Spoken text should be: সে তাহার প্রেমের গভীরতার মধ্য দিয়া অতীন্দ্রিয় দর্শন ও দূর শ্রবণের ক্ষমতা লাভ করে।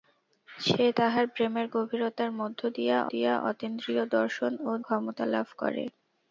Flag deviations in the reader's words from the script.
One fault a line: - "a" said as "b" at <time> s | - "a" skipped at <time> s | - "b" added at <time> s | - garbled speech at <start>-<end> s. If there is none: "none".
- "দিয়া" added at 3.1 s
- "দূর শ্রবণের" skipped at 4.7 s